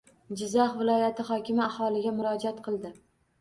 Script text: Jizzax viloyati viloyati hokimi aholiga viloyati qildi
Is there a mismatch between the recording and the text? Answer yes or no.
yes